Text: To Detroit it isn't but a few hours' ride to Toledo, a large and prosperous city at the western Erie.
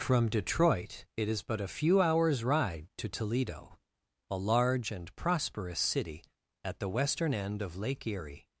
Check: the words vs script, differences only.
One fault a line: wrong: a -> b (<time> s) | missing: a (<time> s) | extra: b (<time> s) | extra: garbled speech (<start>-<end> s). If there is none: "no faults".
wrong: To -> From (0.0 s)
wrong: isn't -> is (1.3 s)
extra: end of Lake (7.3 s)